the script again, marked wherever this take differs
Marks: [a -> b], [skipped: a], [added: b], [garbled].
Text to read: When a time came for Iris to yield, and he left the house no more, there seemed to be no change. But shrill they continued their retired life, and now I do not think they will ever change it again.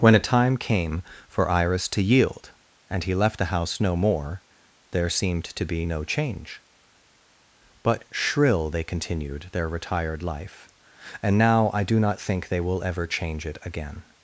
When a time came for Iris to yield, and he left the house no more, there seemed to be no change. But shrill they continued their retired life, and now I do not think they will ever change it again.